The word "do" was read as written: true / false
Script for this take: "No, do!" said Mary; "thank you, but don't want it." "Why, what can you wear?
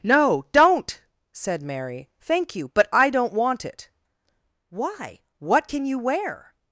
false